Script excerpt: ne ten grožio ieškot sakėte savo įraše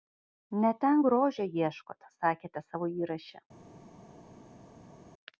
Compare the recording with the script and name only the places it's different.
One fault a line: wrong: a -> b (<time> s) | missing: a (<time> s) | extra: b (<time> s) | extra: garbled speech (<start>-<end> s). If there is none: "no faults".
no faults